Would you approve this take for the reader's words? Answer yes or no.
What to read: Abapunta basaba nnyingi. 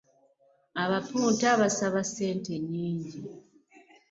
no